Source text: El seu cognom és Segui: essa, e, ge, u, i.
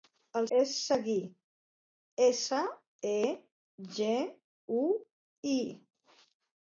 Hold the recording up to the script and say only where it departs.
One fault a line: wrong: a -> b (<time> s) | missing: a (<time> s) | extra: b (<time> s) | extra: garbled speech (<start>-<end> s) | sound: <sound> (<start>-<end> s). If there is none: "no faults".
missing: seu cognom (0.5 s)